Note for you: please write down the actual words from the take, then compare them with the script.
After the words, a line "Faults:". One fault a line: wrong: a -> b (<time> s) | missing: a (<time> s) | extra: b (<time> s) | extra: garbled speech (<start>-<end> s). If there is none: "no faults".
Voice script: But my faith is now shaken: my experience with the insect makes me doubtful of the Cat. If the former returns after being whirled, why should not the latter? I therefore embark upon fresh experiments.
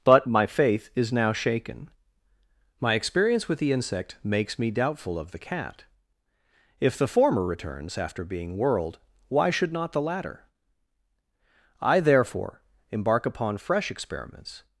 But my faith is now shaken: my experience with the insect makes me doubtful of the Cat. If the former returns after being whirled, why should not the latter? I therefore embark upon fresh experiments.
Faults:
no faults